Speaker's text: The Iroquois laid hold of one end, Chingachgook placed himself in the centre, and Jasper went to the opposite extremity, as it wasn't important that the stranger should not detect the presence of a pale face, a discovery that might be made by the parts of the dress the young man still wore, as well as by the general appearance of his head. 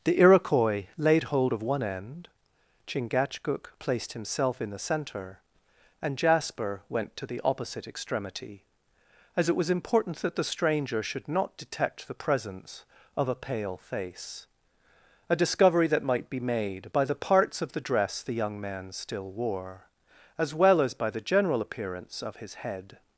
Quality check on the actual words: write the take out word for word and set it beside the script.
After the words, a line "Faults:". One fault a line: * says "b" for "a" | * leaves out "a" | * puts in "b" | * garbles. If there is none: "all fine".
The Iroquois laid hold of one end, Chingachgook placed himself in the centre, and Jasper went to the opposite extremity, as it was important that the stranger should not detect the presence of a pale face, a discovery that might be made by the parts of the dress the young man still wore, as well as by the general appearance of his head.
Faults:
* says "was" for "wasn't"